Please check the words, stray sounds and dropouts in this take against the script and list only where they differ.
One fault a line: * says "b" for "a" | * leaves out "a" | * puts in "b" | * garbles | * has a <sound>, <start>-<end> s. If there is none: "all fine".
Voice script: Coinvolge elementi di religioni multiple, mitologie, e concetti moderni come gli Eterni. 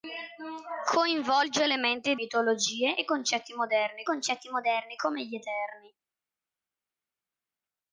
* says "mitologie e concetti moderni" for "di religioni multiple mitologie e"